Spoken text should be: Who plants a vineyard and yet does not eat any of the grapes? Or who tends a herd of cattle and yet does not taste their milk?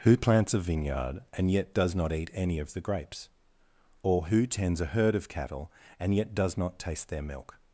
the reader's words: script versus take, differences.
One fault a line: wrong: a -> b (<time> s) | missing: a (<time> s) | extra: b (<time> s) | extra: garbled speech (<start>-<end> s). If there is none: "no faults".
no faults